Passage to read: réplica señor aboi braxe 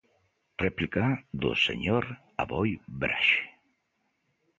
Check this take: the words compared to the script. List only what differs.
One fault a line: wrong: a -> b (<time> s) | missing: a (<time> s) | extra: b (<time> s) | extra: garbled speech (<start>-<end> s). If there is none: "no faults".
extra: do (1.4 s)